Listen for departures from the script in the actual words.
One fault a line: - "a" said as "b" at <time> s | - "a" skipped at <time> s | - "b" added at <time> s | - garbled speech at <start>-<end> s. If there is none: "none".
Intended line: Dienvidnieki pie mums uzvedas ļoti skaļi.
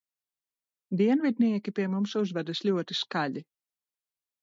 none